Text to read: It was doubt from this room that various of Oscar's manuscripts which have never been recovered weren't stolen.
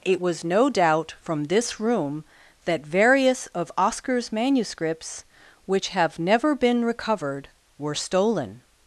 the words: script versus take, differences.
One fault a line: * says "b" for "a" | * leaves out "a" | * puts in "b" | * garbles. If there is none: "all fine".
* puts in "no"
* says "were" for "weren't"